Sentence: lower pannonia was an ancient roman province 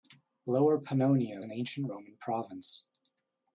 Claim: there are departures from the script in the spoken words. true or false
true